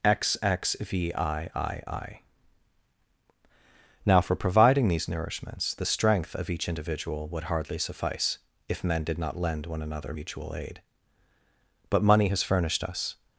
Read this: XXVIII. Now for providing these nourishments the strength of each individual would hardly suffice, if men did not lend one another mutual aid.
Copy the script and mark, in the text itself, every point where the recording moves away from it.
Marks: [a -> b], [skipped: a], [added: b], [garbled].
XXVIII. Now for providing these nourishments the strength of each individual would hardly suffice, if men did not lend one another mutual aid. [added: But money has furnished us]